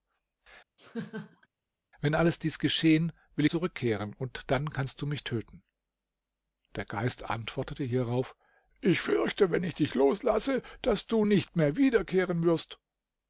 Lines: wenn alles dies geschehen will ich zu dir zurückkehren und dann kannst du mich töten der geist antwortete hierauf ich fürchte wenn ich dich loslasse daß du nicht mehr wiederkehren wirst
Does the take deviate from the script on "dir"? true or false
true